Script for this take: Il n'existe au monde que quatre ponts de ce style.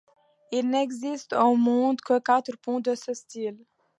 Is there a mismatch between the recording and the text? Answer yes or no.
no